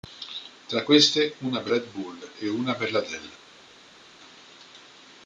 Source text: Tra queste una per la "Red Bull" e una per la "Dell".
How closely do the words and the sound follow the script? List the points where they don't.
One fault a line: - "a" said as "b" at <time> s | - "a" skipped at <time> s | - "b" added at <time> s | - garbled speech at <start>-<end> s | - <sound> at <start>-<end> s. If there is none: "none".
- "la" skipped at 1.7 s